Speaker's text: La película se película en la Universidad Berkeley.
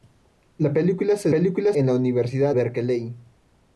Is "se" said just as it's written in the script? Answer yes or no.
yes